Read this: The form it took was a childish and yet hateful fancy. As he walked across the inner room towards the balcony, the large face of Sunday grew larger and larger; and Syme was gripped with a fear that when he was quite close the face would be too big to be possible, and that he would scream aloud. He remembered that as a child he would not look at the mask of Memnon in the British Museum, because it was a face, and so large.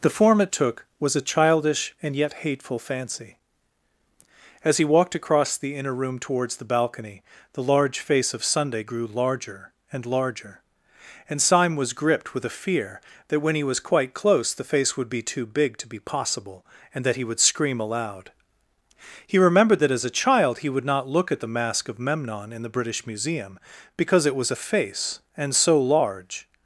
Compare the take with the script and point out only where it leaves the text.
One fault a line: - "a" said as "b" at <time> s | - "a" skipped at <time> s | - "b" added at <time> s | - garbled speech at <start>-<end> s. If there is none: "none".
none